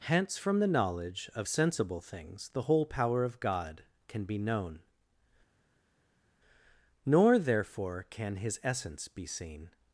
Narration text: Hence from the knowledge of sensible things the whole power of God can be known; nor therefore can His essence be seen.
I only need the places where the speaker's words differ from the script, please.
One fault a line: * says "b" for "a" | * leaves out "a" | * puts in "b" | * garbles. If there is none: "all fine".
all fine